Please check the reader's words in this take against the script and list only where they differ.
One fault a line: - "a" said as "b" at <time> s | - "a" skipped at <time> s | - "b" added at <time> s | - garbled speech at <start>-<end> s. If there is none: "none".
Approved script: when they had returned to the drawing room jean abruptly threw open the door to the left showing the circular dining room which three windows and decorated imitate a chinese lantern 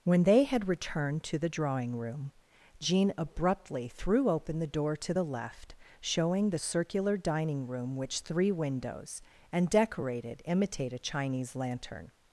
none